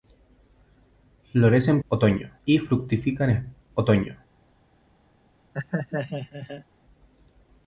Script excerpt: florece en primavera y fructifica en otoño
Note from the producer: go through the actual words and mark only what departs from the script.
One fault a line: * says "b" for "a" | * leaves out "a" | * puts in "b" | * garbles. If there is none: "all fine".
* says "otoño" for "primavera"